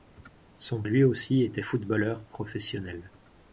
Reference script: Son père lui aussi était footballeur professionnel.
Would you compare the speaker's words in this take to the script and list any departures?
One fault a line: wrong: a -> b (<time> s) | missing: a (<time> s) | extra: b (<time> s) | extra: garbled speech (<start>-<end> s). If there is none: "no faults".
missing: père (0.8 s)